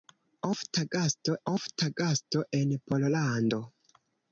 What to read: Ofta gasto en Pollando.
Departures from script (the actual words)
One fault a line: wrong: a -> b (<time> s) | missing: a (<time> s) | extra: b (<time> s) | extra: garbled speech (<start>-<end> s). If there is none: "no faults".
extra: ofta gasto (1.5 s)